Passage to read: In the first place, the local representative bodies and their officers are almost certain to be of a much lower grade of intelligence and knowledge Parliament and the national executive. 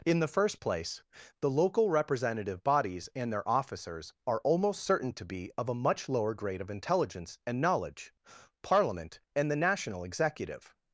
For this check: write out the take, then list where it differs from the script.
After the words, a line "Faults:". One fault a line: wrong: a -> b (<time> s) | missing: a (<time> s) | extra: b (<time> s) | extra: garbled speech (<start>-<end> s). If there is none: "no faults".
In the first place, the local representative bodies and their officers are almost certain to be of a much lower grade of intelligence and knowledge Parliament and the national executive.
Faults:
no faults